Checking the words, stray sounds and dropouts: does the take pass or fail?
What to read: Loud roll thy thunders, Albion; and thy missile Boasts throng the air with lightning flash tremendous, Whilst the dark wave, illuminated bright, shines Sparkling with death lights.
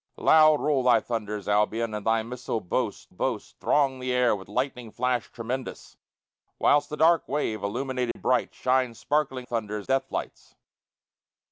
fail